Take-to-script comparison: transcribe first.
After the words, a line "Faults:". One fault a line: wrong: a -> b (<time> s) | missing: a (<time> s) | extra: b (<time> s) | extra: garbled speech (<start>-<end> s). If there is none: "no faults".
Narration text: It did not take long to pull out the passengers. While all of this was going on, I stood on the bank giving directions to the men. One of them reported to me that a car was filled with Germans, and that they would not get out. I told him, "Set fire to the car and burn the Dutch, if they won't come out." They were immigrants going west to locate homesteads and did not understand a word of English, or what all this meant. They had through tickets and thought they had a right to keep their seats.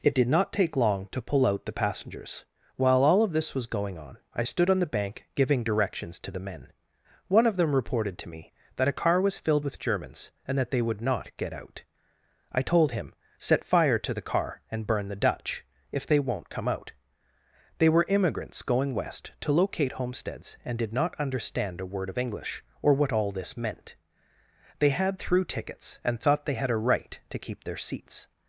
It did not take long to pull out the passengers. While all of this was going on, I stood on the bank giving directions to the men. One of them reported to me that a car was filled with Germans, and that they would not get out. I told him, "Set fire to the car and burn the Dutch, if they won't come out." They were immigrants going west to locate homesteads and did not understand a word of English, or what all this meant. They had through tickets and thought they had a right to keep their seats.
Faults:
no faults